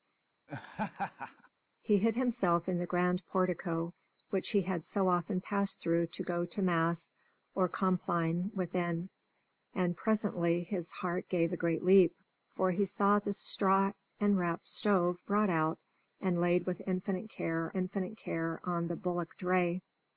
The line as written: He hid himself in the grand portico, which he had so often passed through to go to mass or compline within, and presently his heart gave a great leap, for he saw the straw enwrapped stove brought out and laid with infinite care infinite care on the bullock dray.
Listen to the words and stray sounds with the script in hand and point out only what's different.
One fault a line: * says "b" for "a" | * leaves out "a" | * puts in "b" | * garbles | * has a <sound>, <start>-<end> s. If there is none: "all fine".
* has a laugh, 0.5-1.5 s